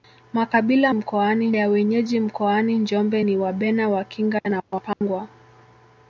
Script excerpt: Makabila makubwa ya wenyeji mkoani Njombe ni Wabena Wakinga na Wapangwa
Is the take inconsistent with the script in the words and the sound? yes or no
yes